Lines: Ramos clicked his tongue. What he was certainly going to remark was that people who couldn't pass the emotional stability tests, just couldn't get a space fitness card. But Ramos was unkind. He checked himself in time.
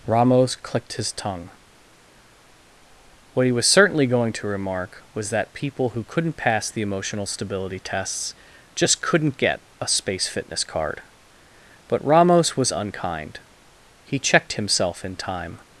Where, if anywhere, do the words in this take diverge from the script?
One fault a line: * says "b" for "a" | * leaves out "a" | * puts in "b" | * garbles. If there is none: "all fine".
all fine